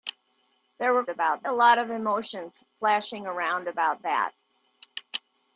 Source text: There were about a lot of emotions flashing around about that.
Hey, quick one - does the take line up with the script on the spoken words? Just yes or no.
yes